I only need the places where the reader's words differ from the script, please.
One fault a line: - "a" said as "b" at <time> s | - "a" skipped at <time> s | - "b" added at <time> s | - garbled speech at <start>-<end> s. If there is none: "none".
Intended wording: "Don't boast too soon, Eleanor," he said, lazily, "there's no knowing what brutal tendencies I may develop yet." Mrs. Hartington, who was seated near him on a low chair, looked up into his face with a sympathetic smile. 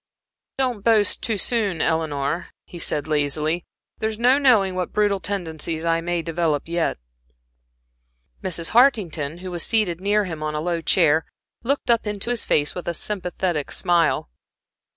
none